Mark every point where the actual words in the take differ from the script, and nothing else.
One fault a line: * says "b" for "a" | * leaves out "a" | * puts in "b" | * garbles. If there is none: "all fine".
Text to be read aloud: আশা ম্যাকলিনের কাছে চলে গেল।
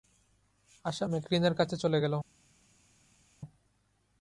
all fine